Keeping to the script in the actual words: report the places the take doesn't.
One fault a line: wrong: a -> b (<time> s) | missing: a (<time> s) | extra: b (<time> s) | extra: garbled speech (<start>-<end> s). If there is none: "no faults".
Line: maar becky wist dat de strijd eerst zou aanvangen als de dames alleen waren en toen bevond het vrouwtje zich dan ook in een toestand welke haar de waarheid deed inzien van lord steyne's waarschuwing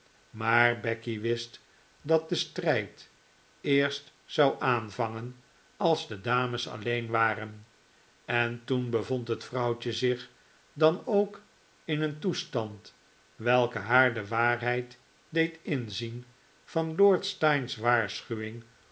no faults